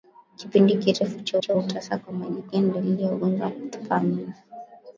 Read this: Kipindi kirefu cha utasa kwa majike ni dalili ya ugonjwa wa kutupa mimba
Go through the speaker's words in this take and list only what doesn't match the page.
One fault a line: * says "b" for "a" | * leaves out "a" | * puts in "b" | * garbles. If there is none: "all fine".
* puts in "cha"